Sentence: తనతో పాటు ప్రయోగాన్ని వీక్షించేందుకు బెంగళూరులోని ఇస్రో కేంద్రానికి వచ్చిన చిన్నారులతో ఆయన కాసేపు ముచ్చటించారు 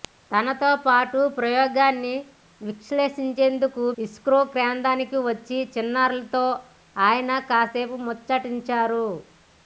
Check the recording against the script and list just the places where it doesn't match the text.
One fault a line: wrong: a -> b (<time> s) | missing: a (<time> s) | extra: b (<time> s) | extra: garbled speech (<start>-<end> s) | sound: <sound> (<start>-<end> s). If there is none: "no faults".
missing: బెంగళూరులోని (3.8 s)